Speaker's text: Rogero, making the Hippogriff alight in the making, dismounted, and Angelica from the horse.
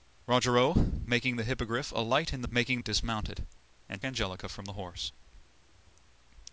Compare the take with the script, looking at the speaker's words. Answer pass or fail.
pass